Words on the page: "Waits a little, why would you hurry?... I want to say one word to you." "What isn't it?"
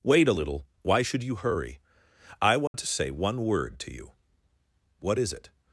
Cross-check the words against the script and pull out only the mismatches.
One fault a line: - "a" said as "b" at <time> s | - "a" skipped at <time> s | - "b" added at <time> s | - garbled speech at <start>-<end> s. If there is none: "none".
- "Waits" said as "Wait" at 0.0 s
- "would" said as "should" at 1.0 s
- "isn't" said as "is" at 5.2 s